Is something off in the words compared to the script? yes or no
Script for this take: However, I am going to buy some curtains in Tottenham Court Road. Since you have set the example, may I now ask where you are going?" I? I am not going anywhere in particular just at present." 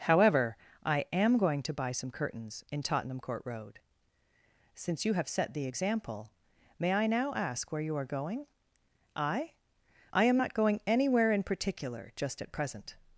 no